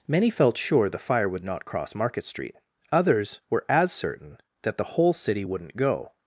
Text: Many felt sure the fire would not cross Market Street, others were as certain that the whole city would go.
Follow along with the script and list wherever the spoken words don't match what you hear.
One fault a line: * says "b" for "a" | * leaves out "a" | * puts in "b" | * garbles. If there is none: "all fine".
* says "wouldn't" for "would"